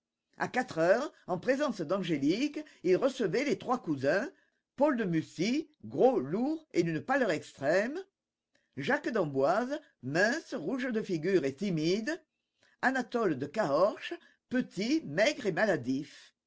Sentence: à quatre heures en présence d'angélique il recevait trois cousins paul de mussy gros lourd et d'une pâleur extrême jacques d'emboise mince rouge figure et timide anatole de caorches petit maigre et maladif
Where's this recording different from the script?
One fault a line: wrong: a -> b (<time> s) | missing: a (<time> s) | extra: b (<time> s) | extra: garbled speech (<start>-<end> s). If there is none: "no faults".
extra: les (3.4 s)
extra: de (10.9 s)